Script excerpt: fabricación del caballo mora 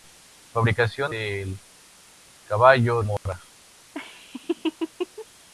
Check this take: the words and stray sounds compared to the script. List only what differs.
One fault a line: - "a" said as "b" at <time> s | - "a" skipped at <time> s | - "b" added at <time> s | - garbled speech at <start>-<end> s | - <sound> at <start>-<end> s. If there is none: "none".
- dropout at 3.2-3.3 s
- laugh at 3.9-5.3 s